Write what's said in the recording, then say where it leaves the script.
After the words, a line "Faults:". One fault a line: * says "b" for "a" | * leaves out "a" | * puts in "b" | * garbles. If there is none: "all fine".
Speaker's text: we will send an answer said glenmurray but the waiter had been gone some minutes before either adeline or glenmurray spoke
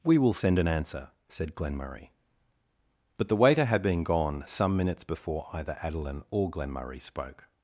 we will send an answer said glenmurray but the waiter had been gone some minutes before either adeline or glenmurray spoke
Faults:
all fine